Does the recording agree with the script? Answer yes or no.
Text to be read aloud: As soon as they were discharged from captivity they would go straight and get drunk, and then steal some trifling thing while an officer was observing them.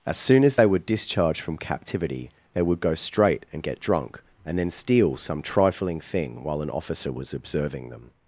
yes